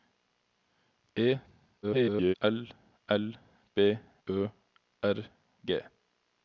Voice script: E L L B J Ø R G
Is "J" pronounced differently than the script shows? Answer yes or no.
yes